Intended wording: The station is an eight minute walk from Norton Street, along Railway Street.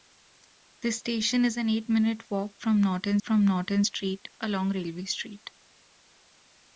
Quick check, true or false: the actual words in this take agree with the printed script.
false